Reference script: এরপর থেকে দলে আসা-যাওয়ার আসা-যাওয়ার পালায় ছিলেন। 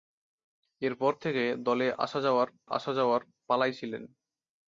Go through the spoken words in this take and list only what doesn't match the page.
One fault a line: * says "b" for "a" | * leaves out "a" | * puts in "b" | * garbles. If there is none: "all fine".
all fine